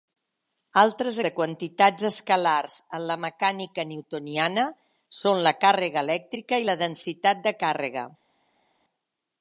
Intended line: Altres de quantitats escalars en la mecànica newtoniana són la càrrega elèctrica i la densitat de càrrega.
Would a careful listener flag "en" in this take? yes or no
no